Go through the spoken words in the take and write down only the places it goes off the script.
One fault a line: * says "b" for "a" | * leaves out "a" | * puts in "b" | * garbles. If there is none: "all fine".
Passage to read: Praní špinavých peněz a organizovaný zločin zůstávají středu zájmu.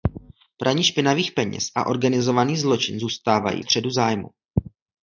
all fine